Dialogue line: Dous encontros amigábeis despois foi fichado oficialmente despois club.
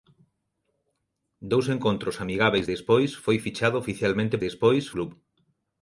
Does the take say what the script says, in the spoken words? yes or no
yes